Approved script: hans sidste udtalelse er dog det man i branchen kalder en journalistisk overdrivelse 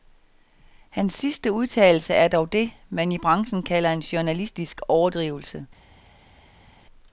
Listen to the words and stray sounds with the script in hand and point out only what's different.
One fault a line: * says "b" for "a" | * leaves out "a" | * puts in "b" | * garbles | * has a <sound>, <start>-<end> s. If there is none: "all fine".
all fine